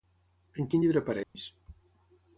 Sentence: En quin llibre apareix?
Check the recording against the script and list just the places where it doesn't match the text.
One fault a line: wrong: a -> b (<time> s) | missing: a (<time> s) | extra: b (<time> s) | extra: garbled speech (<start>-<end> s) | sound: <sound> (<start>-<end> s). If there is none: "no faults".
sound: dropout (1.2-1.4 s)